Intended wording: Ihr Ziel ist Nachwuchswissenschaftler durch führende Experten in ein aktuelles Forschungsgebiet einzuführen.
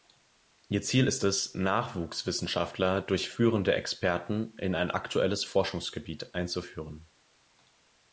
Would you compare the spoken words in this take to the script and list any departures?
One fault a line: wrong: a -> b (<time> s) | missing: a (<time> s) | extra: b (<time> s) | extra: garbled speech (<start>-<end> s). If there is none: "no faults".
extra: es (1.2 s)